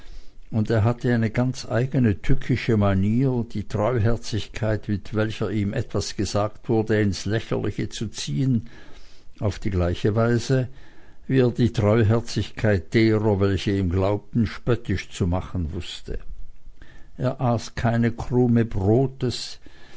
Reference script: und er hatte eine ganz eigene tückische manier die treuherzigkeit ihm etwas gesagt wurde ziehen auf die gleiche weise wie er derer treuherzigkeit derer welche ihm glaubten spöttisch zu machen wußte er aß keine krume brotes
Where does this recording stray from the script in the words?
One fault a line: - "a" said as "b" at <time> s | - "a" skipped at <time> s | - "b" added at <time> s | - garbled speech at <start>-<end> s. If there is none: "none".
- "mit welcher" added at 4.9 s
- "ins lächerliche zu" added at 7.0 s
- "derer" said as "die" at 11.5 s